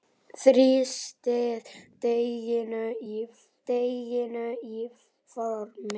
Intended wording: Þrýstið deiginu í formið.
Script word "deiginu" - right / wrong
right